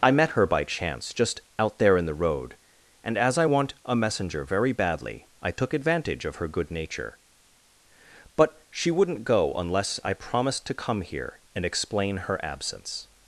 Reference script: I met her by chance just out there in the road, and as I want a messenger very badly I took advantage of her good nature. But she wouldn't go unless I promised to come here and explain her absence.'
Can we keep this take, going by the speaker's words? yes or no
yes